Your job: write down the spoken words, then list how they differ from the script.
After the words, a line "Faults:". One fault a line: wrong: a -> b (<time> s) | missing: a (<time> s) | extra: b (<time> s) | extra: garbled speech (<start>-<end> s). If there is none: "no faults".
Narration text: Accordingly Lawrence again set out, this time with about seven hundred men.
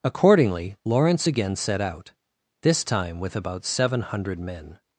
Accordingly Lawrence again set out, this time with about seven hundred men.
Faults:
no faults